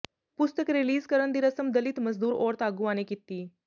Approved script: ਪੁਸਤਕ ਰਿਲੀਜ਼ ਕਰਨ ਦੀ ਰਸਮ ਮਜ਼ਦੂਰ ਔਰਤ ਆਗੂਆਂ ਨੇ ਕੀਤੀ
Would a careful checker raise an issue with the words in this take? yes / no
yes